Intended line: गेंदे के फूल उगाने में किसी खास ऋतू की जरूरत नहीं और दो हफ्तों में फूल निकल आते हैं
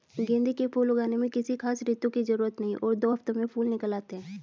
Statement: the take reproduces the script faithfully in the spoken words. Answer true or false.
true